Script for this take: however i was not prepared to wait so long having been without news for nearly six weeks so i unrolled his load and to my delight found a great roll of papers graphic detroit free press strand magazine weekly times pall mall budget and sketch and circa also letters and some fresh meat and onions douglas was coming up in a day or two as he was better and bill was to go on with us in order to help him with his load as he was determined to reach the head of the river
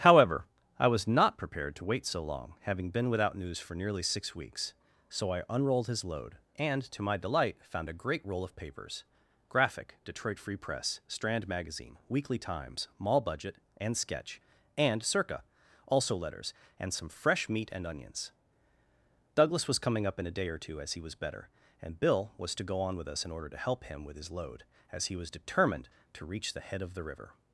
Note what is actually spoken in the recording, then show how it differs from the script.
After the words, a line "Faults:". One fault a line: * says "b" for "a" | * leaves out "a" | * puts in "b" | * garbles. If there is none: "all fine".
however i was not prepared to wait so long having been without news for nearly six weeks so i unrolled his load and to my delight found a great roll of papers graphic detroit free press strand magazine weekly times mall budget and sketch and circa also letters and some fresh meat and onions douglas was coming up in a day or two as he was better and bill was to go on with us in order to help him with his load as he was determined to reach the head of the river
Faults:
* leaves out "pall"